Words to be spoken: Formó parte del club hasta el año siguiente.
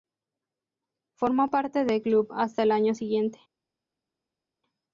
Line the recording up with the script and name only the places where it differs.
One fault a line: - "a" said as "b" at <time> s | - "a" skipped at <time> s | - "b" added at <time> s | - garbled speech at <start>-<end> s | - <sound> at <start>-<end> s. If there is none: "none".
none